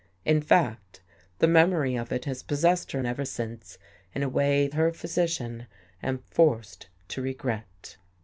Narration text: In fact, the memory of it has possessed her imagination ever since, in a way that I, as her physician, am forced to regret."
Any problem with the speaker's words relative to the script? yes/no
yes